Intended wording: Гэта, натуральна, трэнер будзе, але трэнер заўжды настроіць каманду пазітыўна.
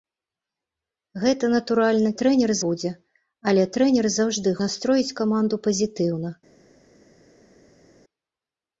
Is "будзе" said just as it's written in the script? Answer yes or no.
yes